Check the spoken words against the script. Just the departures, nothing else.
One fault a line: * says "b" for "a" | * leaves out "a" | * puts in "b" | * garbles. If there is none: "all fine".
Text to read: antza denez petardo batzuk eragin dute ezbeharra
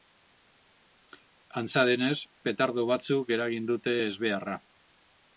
all fine